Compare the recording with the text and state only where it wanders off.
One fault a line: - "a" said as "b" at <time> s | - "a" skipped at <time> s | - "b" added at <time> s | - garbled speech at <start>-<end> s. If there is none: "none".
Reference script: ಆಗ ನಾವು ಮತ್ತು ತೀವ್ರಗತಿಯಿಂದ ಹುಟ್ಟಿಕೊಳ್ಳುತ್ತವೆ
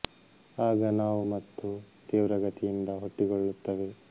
none